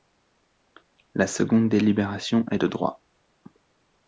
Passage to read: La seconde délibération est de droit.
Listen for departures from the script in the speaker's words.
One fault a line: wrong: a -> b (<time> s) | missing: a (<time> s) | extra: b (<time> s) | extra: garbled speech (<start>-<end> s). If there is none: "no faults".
no faults